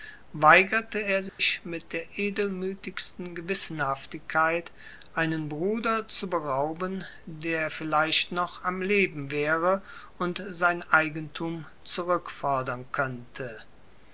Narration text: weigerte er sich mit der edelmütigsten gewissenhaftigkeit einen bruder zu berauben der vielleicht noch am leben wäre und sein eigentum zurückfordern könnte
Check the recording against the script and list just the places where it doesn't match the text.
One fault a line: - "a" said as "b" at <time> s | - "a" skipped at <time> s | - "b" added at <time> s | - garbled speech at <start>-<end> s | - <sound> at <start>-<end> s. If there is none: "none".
- dropout at 1.3-1.4 s